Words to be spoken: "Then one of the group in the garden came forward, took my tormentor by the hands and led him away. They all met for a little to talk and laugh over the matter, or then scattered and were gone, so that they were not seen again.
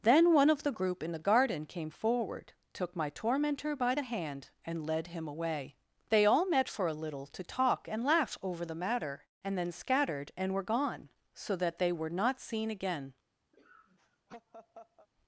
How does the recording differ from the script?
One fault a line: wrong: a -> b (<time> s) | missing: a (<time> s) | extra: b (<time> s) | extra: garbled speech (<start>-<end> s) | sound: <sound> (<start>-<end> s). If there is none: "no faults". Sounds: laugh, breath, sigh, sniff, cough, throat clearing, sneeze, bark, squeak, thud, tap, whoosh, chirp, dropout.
wrong: hands -> hand (4.0 s)
wrong: or -> and (9.4 s)
sound: laugh (13.5-15.1 s)